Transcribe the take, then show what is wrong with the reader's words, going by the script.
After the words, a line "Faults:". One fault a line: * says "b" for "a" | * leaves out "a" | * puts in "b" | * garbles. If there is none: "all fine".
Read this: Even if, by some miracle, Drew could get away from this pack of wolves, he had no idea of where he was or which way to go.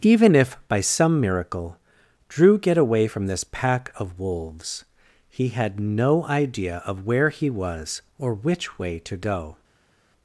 Even if, by some miracle, Drew get away from this pack of wolves, he had no idea of where he was or which way to go.
Faults:
* leaves out "could"